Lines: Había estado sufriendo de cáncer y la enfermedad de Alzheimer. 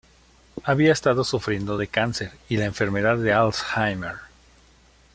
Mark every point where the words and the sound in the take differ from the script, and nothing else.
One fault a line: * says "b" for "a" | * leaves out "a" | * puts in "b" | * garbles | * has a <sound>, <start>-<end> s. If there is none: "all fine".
all fine